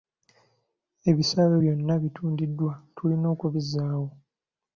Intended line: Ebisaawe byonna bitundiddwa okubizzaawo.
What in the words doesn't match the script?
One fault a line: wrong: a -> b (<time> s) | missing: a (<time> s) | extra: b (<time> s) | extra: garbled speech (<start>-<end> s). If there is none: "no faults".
extra: tulina (3.0 s)